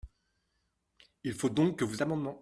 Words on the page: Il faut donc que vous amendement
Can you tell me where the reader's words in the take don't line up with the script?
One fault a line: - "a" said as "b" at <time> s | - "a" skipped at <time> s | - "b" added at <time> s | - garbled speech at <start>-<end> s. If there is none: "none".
none